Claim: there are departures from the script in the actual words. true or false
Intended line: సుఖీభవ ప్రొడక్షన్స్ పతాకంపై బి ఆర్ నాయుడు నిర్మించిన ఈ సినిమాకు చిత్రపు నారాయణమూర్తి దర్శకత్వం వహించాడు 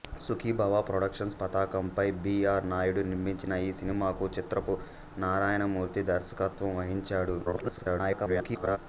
true